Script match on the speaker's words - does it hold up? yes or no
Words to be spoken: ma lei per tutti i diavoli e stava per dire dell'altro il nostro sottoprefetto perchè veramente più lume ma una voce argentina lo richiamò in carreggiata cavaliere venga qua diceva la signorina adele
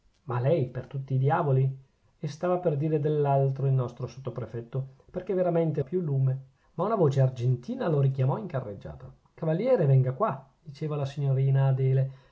yes